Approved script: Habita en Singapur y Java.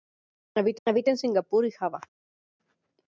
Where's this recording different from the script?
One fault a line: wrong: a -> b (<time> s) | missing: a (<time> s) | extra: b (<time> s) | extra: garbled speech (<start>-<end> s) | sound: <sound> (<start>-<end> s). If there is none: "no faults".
extra: habita (0.9 s)